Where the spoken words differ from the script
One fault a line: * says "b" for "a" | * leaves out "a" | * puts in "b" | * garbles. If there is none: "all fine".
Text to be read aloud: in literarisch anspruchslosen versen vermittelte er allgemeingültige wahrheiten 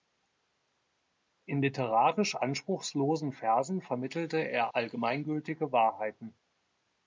all fine